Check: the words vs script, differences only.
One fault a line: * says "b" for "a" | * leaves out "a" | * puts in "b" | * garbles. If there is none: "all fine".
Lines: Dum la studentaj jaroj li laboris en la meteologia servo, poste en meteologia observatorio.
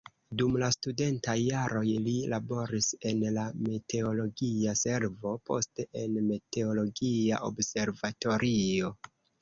all fine